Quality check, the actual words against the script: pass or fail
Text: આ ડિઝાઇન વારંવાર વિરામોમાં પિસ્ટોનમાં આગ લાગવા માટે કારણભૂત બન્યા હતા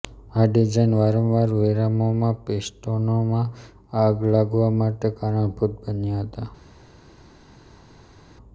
pass